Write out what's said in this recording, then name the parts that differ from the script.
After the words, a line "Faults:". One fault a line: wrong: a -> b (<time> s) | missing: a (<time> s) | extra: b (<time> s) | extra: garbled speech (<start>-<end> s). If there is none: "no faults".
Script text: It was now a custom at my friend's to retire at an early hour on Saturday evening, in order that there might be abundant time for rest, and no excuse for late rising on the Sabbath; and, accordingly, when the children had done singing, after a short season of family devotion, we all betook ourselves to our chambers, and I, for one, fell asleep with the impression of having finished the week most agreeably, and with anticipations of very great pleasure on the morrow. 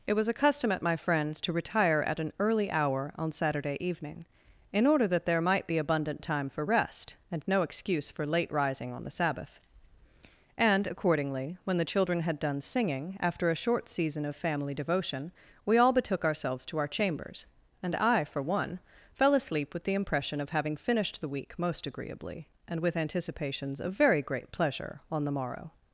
It was a custom at my friend's to retire at an early hour on Saturday evening, in order that there might be abundant time for rest, and no excuse for late rising on the Sabbath; and, accordingly, when the children had done singing, after a short season of family devotion, we all betook ourselves to our chambers, and I, for one, fell asleep with the impression of having finished the week most agreeably, and with anticipations of very great pleasure on the morrow.
Faults:
missing: now (0.3 s)